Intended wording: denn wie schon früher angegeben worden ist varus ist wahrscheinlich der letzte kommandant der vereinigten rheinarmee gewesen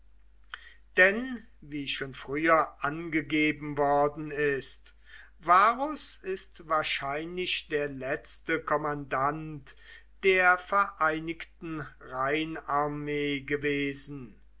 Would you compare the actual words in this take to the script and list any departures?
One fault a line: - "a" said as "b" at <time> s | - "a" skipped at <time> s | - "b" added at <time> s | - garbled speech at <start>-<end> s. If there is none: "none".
none